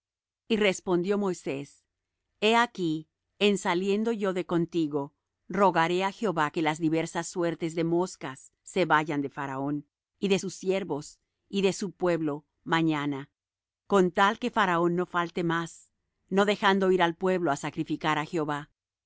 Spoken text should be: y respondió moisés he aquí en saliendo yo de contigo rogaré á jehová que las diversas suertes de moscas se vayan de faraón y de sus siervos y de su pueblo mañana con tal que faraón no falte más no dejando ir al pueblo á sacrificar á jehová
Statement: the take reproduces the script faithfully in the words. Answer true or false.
true